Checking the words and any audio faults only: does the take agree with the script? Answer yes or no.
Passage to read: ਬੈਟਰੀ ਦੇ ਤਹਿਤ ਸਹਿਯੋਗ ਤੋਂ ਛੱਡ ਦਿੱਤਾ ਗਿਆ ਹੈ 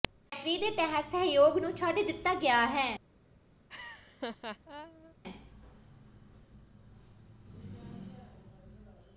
no